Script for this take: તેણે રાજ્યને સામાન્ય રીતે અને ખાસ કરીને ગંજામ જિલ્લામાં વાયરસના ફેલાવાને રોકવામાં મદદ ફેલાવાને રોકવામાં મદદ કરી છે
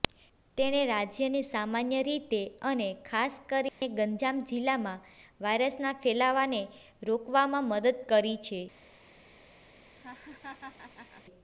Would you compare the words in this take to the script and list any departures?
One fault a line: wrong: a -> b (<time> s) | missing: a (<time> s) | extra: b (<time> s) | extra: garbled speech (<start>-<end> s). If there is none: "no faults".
missing: ફેલાવાને રોકવામાં મદદ (8.0 s)